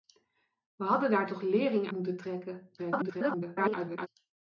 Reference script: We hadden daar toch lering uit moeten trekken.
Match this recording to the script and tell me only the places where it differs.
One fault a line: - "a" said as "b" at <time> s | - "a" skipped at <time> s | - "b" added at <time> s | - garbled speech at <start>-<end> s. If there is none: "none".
- "uit" skipped at 1.9 s
- garbled speech at 2.8-4.1 s